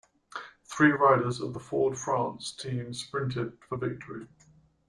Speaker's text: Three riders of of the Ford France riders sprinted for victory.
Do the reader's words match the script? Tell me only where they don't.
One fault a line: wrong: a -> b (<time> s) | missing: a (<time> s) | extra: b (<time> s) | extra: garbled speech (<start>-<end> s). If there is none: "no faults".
missing: of (1.5 s)
wrong: riders -> team (2.5 s)